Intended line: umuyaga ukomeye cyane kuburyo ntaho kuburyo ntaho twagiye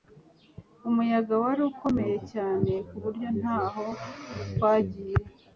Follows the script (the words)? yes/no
no